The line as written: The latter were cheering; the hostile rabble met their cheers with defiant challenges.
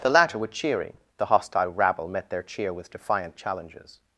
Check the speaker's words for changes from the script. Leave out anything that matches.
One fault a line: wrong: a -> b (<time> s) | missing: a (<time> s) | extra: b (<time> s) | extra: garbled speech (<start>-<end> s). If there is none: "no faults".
wrong: cheers -> cheer (2.4 s)